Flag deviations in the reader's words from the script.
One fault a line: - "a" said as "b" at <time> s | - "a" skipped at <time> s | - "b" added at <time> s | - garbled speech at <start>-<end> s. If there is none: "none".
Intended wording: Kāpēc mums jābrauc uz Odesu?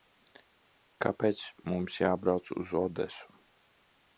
none